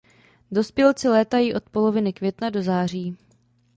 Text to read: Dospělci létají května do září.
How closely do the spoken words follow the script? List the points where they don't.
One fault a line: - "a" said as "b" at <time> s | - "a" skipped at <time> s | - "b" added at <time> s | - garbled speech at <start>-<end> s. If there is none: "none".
- "od poloviny" added at 1.5 s